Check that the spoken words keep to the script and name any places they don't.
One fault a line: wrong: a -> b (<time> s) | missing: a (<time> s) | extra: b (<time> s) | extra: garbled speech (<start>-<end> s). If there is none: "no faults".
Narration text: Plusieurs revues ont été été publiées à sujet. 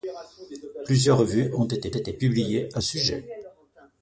no faults